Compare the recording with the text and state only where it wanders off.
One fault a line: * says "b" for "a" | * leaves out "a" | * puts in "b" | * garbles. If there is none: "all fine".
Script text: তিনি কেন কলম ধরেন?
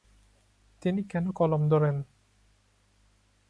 all fine